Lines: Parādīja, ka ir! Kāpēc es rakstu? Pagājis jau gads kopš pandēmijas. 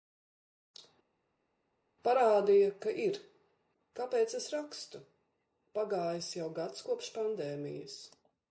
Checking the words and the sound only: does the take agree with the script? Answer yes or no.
yes